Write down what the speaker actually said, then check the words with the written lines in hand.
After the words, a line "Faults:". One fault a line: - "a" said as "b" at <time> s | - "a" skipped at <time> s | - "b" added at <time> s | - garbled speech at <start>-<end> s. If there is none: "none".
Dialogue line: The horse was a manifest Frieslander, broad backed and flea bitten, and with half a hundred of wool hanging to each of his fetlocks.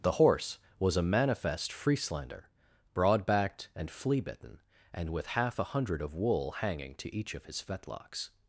The horse was a manifest Frieslander, broad backed and flea bitten, and with half a hundred of wool hanging to each of his fetlocks.
Faults:
none